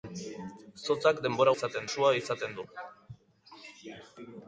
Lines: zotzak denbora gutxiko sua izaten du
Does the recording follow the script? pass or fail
fail